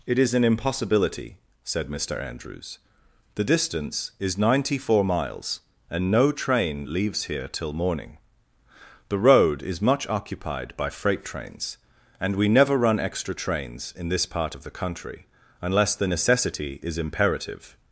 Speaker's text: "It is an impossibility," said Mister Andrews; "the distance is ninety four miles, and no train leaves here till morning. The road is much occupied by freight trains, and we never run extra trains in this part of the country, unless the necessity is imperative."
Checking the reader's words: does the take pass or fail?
pass